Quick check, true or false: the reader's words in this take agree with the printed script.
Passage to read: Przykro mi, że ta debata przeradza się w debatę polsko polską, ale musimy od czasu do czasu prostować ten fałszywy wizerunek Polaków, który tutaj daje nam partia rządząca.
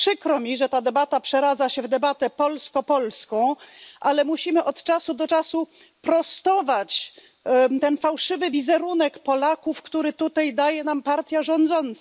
true